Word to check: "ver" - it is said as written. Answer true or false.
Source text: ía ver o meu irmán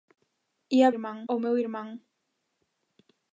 false